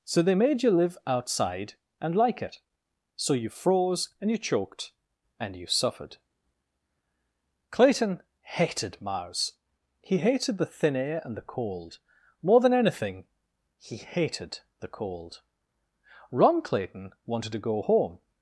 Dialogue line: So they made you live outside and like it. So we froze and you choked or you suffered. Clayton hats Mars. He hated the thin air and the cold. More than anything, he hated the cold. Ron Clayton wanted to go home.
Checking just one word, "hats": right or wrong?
wrong